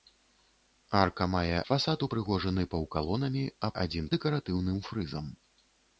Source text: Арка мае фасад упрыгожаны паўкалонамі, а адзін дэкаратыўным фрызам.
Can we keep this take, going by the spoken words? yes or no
yes